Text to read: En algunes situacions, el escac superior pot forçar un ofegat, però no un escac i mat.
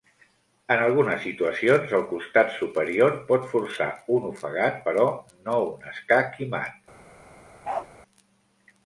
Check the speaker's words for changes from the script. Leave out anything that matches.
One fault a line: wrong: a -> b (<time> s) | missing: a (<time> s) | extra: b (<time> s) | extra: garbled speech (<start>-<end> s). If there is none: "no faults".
wrong: escac -> costat (2.1 s)